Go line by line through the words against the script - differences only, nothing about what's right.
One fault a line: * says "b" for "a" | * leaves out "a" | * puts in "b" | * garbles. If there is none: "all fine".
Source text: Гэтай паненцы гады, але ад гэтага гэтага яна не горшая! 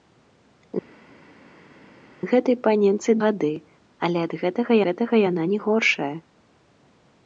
all fine